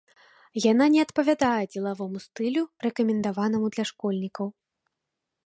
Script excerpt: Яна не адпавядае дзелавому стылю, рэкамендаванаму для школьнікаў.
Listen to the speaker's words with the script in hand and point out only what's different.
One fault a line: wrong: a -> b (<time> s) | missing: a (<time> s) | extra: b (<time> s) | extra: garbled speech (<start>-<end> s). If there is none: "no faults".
no faults